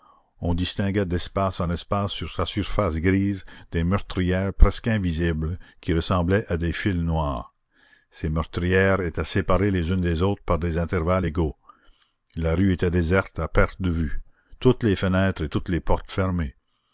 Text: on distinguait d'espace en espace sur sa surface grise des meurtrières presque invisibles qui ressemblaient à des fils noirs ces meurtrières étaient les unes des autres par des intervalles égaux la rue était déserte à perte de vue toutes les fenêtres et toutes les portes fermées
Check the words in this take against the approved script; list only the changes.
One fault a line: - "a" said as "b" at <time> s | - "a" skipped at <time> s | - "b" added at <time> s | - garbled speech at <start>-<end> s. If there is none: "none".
- "séparées" added at 9.2 s